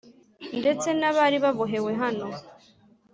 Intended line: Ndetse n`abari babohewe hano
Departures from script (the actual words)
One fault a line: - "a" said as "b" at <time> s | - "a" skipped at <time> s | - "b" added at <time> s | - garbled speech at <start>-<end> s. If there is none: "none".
none